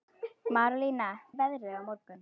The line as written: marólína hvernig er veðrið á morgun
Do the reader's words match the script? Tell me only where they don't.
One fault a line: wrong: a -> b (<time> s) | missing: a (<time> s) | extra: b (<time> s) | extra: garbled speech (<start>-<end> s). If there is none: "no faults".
missing: hvernig (1.1 s)